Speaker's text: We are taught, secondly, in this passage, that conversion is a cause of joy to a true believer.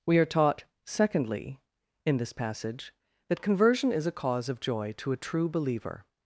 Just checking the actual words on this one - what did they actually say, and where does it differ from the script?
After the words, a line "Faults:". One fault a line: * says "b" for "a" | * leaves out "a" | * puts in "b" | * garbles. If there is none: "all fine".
We are taught, secondly, in this passage, that conversion is a cause of joy to a true believer.
Faults:
all fine